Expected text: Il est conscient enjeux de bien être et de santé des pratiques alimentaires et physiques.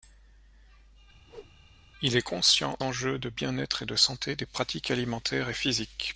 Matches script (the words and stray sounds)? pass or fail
fail